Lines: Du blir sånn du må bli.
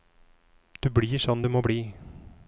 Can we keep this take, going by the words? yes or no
yes